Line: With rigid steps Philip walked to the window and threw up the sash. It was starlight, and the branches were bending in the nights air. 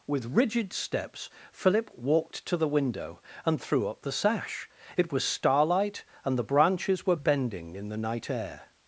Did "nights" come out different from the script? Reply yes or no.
yes